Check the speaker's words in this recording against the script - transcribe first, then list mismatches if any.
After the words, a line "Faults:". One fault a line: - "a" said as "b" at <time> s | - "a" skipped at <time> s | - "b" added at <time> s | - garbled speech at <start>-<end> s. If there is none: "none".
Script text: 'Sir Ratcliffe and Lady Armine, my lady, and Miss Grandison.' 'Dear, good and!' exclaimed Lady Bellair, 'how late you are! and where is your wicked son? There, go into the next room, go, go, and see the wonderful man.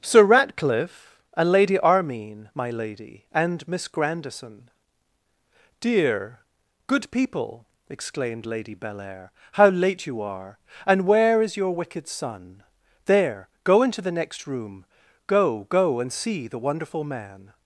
'Sir Ratcliffe and Lady Armine, my lady, and Miss Grandison.' 'Dear, good people!' exclaimed Lady Bellair, 'how late you are! and where is your wicked son? There, go into the next room, go, go, and see the wonderful man.
Faults:
- "and" said as "people" at 7.1 s